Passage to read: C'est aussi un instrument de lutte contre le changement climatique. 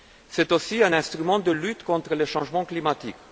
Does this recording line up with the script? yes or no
yes